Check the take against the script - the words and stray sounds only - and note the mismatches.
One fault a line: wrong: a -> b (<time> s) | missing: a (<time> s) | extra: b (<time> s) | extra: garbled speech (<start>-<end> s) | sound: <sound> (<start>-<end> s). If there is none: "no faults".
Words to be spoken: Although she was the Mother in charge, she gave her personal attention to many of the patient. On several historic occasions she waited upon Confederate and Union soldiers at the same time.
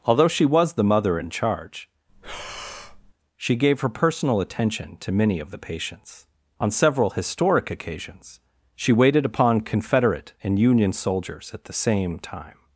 sound: breath (2.1-3.1 s)
wrong: patient -> patients (5.6 s)